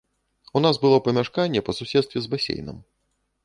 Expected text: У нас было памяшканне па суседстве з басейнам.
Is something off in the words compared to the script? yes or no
no